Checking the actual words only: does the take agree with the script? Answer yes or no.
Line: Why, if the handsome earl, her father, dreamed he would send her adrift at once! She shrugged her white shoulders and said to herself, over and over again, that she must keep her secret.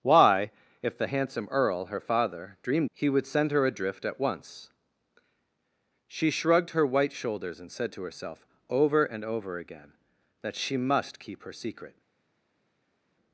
yes